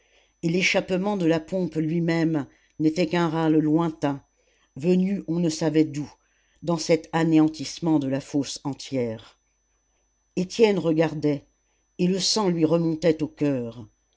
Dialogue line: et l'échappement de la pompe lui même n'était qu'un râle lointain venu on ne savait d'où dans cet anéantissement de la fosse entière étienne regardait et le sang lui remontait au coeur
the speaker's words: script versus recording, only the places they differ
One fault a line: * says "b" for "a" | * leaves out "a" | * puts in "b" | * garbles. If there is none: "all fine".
all fine